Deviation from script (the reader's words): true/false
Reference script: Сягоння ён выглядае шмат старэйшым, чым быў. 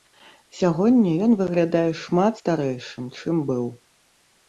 false